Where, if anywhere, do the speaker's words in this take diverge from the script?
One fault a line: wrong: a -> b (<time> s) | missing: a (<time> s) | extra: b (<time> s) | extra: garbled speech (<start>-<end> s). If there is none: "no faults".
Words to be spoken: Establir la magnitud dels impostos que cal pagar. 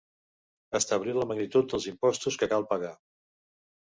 no faults